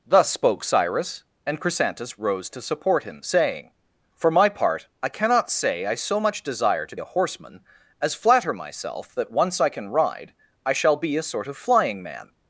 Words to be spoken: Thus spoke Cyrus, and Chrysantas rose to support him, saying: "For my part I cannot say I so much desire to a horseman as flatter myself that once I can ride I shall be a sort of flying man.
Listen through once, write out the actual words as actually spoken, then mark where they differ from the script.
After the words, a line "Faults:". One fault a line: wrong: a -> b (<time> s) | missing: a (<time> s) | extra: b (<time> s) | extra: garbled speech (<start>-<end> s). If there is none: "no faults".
Thus spoke Cyrus, and Chrysantas rose to support him, saying: "For my part I cannot say I so much desire to a horseman as flatter myself that once I can ride I shall be a sort of flying man.
Faults:
no faults